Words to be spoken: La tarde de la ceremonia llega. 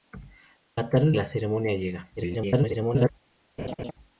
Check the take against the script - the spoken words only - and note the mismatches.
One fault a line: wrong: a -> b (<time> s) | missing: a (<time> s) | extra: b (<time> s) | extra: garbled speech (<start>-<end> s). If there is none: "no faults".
missing: de (1.1 s)
extra: garbled speech (2.2-3.1 s)